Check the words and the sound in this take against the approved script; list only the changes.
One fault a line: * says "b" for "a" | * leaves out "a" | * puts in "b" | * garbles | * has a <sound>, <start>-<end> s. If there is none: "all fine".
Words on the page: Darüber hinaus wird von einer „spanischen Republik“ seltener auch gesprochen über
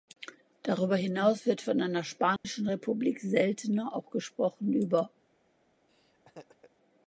* has a dropout, 2.4-2.4 s
* has a laugh, 5.9-6.7 s